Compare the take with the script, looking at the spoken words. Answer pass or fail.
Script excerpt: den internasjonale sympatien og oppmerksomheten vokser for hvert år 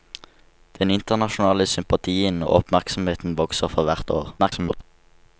fail